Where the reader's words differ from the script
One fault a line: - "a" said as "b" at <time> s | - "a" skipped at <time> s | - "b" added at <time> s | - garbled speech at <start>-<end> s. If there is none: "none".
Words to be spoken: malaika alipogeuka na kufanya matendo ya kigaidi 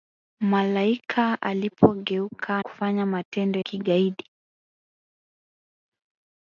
- "na" skipped at 2.6 s
- "ya" skipped at 3.6 s